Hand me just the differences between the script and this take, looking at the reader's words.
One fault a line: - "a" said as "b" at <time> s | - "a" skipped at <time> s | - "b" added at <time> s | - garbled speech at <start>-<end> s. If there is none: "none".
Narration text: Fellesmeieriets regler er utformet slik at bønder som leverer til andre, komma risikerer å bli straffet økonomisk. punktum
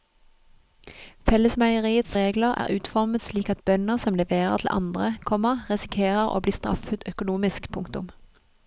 none